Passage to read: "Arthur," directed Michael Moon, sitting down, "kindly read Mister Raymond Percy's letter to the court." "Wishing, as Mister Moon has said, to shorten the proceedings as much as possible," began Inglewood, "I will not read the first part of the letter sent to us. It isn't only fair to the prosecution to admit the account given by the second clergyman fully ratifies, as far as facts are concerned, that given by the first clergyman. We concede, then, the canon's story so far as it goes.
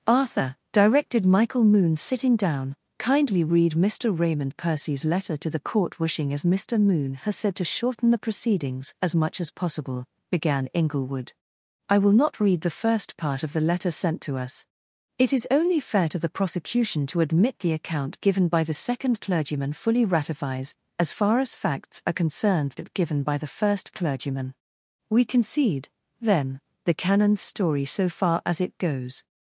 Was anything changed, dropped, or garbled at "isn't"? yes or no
yes